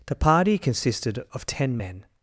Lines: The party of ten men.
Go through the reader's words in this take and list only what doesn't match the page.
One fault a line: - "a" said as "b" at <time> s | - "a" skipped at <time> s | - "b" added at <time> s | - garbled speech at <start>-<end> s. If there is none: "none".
- "consisted" added at 0.6 s